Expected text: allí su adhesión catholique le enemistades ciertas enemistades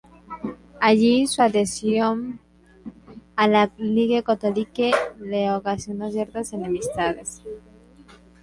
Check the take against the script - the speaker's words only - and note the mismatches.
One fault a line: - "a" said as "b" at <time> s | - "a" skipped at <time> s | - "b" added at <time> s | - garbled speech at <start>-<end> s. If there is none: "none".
- "a la ligue" added at 3.3 s
- "enemistades" said as "ocasionó" at 5.5 s